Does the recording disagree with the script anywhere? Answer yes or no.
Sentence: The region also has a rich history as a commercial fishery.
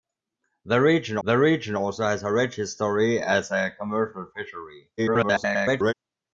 yes